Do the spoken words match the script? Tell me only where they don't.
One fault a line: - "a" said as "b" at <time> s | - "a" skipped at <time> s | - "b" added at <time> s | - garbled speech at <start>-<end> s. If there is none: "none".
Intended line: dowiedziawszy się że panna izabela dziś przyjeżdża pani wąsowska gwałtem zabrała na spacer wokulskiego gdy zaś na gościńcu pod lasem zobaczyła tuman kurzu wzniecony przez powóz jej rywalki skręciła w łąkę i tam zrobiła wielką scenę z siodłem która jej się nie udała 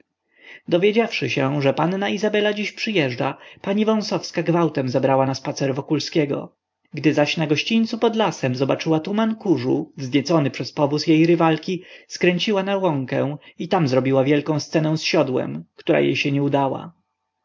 - "w" said as "na" at 12.6 s